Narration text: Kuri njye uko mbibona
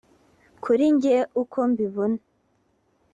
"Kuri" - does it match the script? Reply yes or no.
yes